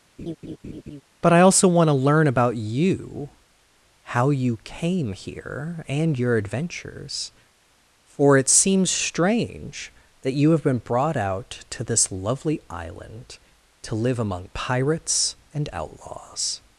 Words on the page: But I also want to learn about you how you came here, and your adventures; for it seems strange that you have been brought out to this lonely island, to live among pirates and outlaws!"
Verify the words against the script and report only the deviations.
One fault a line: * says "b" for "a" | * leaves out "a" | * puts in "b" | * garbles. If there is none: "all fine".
* says "lovely" for "lonely"